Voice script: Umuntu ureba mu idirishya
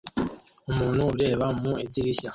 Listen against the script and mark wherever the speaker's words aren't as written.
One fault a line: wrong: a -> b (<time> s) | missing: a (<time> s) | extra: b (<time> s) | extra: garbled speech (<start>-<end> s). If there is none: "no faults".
no faults